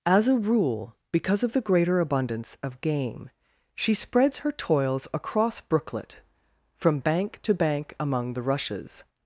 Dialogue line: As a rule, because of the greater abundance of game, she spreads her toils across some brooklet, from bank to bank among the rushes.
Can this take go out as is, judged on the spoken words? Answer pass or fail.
fail